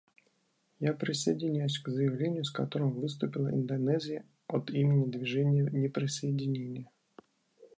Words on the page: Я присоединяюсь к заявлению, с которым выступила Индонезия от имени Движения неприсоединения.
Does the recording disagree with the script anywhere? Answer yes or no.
no